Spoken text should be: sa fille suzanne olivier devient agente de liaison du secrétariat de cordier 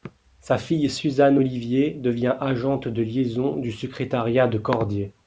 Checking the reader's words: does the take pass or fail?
pass